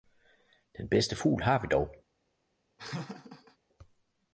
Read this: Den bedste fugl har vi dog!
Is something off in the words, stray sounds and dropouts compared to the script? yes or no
yes